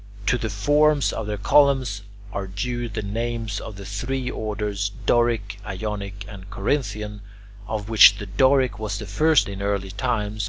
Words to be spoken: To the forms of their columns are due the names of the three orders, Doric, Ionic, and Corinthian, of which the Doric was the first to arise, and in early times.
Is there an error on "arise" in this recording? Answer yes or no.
yes